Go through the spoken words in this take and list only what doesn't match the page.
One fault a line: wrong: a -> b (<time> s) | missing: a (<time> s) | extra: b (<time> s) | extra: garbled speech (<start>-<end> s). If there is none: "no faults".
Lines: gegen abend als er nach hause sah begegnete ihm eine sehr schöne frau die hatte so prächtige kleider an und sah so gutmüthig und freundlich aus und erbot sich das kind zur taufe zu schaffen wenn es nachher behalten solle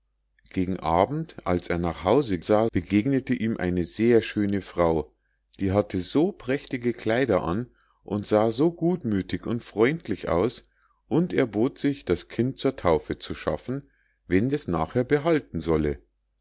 no faults